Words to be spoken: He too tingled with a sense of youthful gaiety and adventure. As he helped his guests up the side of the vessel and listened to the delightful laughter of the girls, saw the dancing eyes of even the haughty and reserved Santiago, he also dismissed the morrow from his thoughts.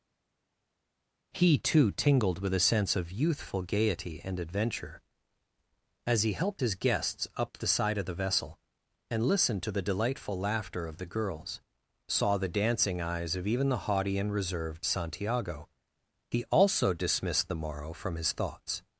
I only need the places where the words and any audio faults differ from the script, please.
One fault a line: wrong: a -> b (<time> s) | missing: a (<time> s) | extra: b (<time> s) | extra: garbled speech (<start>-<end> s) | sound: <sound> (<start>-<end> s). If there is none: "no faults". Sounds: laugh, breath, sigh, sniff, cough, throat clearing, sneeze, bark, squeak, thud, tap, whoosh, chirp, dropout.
no faults